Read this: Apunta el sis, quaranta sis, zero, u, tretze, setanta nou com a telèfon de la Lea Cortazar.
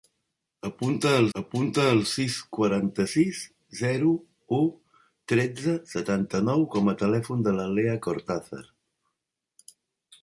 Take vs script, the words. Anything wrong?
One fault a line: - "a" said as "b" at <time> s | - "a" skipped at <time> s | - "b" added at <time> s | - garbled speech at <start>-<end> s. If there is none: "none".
- "apunta el" added at 1.4 s